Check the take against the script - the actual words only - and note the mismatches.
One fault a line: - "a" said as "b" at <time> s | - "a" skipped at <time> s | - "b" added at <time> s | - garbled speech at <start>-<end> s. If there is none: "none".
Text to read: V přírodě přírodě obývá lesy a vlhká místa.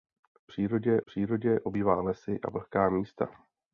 none